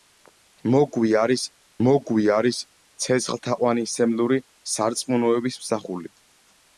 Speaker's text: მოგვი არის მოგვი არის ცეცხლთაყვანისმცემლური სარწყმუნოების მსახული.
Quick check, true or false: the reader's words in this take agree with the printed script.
true